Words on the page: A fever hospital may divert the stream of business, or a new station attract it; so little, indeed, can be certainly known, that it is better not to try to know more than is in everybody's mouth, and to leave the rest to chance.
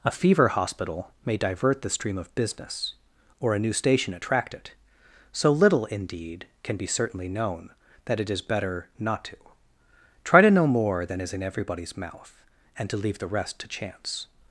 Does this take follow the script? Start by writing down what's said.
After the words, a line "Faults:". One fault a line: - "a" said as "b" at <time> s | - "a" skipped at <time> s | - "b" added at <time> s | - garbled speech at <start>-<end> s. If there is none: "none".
A fever hospital may divert the stream of business, or a new station attract it; so little, indeed, can be certainly known, that it is better not to try to know more than is in everybody's mouth, and to leave the rest to chance.
Faults:
none